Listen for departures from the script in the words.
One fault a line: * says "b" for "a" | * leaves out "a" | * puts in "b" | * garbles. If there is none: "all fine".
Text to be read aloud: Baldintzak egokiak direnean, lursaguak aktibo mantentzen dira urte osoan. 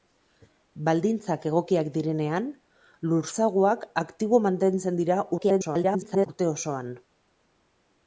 * garbles